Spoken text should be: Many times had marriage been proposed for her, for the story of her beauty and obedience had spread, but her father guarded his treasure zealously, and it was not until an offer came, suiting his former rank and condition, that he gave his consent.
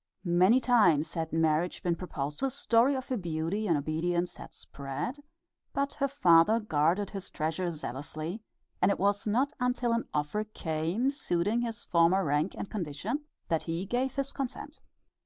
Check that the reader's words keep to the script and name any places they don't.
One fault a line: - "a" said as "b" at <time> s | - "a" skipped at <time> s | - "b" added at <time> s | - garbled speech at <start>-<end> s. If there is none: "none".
- "for her for" skipped at 2.4 s